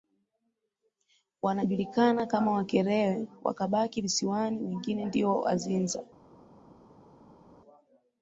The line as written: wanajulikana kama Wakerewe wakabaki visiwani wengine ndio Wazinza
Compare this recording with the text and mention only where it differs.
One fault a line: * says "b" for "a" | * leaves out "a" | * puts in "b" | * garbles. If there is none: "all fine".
all fine